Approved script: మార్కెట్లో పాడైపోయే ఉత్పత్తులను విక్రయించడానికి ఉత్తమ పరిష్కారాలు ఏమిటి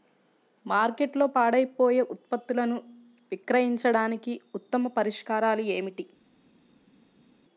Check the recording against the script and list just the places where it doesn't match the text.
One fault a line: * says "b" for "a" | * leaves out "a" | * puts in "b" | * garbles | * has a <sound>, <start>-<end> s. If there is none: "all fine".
all fine